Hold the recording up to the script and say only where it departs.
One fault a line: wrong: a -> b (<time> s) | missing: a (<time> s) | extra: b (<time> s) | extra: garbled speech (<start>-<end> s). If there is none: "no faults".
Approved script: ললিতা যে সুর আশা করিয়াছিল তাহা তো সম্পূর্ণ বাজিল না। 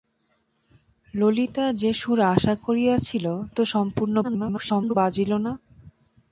missing: তাহা (3.2 s)
extra: garbled speech (4.2-5.0 s)